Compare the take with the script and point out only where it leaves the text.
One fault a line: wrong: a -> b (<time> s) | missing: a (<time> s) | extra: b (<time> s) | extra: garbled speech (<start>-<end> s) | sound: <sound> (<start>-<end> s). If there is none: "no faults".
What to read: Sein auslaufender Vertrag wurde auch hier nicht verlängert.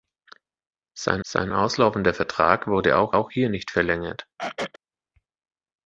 extra: sein (1.2 s)
extra: auch (3.1 s)
sound: throat clearing (4.4-4.8 s)